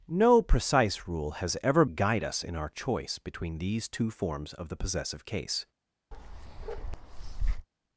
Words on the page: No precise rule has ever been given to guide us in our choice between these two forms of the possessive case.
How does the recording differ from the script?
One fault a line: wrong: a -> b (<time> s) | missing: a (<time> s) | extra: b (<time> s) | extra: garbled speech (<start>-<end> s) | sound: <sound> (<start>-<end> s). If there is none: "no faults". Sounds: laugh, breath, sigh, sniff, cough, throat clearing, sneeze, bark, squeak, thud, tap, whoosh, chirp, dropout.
missing: been given to (1.9 s)
sound: bark (6.1-7.7 s)